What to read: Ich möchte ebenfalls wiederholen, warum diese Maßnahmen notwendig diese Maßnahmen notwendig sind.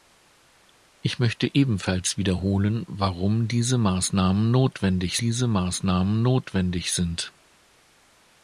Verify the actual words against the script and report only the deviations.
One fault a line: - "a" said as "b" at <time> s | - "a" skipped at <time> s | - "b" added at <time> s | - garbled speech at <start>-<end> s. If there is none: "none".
none